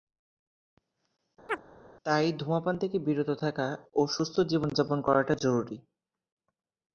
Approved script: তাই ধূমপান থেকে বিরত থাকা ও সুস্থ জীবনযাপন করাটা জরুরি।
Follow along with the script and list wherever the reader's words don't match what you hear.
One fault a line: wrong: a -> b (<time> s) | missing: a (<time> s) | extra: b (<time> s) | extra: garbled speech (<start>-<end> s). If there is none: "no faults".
no faults